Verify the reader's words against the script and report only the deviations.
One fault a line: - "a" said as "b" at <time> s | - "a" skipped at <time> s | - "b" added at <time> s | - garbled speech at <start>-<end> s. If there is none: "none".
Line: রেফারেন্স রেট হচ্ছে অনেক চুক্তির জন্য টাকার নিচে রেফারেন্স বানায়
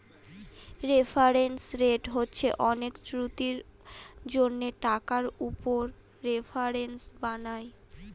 - "নিচে" said as "উপর" at 5.5 s